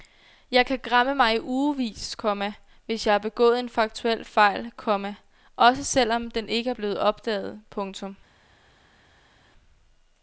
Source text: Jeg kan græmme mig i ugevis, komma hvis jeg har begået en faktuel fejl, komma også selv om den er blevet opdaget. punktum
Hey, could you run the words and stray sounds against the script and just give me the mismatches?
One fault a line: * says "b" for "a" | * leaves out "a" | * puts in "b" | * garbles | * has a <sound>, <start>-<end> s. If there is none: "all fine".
* puts in "ikke"